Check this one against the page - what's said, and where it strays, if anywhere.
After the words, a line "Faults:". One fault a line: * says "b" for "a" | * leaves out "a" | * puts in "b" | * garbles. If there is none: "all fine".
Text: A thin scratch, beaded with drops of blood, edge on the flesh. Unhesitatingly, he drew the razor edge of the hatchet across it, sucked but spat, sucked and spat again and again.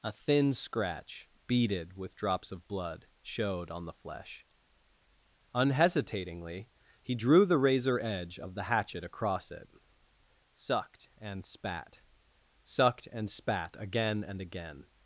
A thin scratch, beaded with drops of blood, showed on the flesh. Unhesitatingly, he drew the razor edge of the hatchet across it, sucked and spat, sucked and spat again and again.
Faults:
* says "showed" for "edge"
* says "and" for "but"